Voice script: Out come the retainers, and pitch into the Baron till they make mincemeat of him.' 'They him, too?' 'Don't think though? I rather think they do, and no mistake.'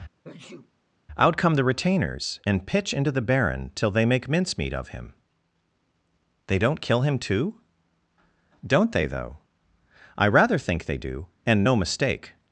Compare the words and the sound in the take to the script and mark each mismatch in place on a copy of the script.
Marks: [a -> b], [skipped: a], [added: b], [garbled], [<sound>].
[sneeze] Out come the retainers, and pitch into the Baron till they make mincemeat of him.' 'They [added: don't kill] him, too?' 'Don't [think -> they] though? I rather think they do, and no mistake.'